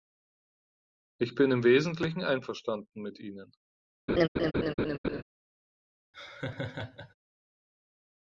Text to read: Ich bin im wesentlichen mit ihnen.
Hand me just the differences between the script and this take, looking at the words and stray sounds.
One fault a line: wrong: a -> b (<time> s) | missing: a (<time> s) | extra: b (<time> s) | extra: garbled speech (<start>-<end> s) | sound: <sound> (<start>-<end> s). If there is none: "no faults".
extra: einverstanden (2.2 s)
sound: laugh (4.1-5.2 s)
sound: laugh (6.1-7.1 s)